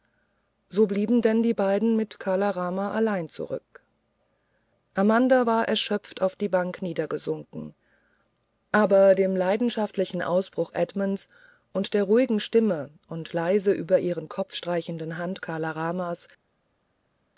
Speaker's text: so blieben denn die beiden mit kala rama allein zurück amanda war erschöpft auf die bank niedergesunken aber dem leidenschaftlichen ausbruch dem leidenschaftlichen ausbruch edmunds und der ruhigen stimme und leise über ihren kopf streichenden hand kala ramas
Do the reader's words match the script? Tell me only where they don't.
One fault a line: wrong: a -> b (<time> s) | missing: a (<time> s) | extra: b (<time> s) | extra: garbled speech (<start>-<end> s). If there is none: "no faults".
missing: dem leidenschaftlichen ausbruch (10.7 s)